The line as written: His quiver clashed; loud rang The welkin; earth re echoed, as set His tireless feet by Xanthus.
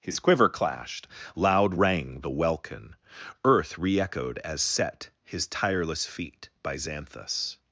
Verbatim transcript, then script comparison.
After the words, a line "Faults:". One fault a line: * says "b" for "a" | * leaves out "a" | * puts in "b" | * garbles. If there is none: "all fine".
His quiver clashed; loud rang The welkin; earth re echoed, as set His tireless feet by Xanthus.
Faults:
all fine